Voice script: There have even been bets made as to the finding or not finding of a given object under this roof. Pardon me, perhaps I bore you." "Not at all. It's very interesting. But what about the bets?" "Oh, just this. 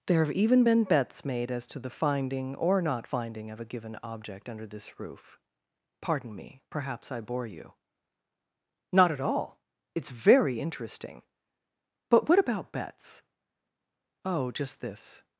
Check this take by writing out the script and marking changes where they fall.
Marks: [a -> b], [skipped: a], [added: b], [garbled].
There have even been bets made as to the finding or not finding of a given object under this roof. Pardon me, perhaps I bore you." "Not at all. It's very interesting. But what about [skipped: the] bets?" "Oh, just this.